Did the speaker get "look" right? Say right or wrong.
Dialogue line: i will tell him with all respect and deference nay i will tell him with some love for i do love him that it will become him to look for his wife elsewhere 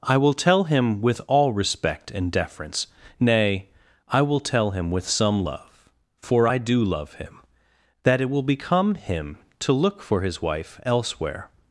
right